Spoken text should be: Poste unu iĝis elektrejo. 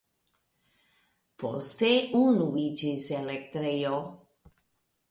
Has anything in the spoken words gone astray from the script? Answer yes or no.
no